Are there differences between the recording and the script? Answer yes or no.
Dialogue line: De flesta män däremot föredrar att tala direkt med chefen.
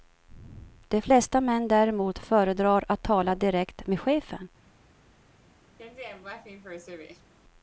no